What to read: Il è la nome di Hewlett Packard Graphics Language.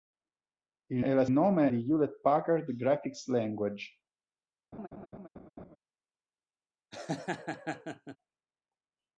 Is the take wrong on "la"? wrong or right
right